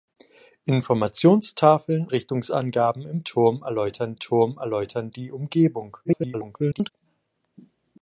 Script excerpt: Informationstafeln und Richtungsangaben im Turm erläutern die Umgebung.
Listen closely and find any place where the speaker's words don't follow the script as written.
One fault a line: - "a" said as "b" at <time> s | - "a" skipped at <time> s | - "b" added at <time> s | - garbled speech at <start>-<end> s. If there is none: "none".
- "und" skipped at 2.1 s
- "Turm erläutern" added at 4.2 s
- garbled speech at 6.0-6.9 s